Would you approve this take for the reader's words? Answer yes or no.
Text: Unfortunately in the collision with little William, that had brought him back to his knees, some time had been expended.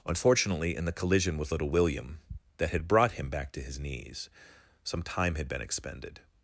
yes